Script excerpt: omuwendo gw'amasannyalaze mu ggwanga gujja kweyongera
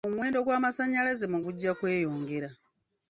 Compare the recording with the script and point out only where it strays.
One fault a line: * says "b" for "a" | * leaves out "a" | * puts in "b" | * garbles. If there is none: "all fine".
* leaves out "ggwanga"